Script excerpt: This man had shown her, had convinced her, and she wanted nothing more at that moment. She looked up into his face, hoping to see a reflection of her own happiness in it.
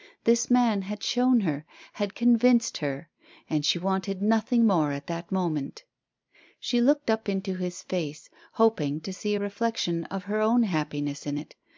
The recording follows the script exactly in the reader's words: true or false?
true